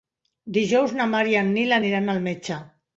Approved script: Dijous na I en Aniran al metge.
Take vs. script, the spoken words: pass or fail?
fail